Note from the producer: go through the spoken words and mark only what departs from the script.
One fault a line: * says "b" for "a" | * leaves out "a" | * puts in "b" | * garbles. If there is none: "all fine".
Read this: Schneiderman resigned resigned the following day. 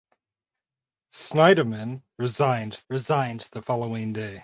all fine